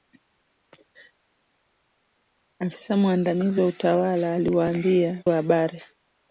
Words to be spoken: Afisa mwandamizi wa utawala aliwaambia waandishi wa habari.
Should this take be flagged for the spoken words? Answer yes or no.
yes